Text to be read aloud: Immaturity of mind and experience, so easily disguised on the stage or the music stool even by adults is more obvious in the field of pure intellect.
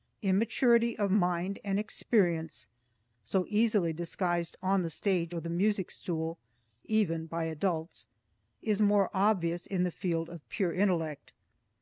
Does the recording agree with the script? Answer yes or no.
yes